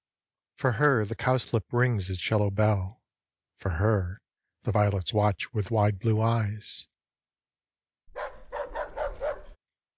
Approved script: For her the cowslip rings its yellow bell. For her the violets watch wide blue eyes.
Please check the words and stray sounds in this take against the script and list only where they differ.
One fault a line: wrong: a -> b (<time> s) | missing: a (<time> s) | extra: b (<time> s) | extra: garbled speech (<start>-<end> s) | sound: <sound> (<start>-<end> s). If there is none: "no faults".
extra: with (5.5 s)
sound: bark (8.1-9.6 s)